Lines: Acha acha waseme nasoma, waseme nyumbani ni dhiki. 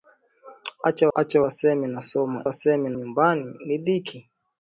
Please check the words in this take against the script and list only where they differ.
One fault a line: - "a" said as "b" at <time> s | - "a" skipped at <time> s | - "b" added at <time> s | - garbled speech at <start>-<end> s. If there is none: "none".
none